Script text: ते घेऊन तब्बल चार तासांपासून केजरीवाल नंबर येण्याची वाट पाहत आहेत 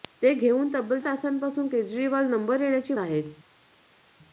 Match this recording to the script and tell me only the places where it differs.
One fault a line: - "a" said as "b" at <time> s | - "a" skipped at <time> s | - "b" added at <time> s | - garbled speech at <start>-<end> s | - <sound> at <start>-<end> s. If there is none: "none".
- "चार" skipped at 1.0 s
- "वाट पाहत" skipped at 2.9 s